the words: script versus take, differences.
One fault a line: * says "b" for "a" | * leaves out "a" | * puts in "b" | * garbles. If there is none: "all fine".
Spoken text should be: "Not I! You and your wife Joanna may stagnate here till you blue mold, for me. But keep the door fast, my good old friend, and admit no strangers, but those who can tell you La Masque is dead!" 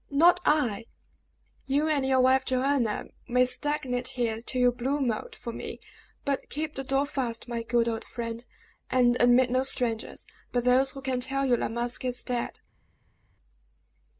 all fine